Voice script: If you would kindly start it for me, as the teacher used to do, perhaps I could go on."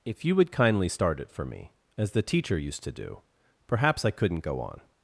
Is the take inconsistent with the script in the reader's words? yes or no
yes